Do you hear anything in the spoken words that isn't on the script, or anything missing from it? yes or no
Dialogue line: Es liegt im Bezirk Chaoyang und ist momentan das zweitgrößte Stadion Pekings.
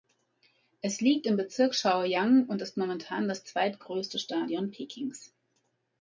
no